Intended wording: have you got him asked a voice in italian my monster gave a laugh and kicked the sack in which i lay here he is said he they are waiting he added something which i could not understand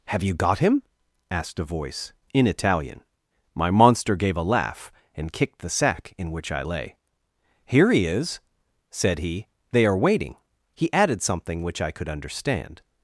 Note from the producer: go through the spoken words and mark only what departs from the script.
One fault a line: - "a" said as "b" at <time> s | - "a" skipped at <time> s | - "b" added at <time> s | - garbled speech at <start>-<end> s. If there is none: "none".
- "not" skipped at 12.1 s